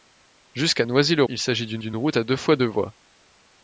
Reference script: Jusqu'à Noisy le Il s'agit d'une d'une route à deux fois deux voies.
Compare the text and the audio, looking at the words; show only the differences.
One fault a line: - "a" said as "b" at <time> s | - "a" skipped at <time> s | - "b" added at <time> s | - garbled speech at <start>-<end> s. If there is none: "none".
none